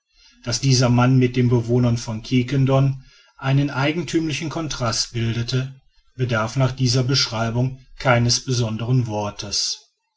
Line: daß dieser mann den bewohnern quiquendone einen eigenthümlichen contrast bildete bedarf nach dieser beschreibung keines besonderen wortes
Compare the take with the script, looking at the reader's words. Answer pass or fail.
fail